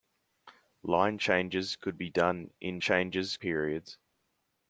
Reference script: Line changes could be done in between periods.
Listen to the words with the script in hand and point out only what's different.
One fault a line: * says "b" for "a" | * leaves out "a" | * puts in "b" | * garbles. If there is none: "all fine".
* says "changes" for "between"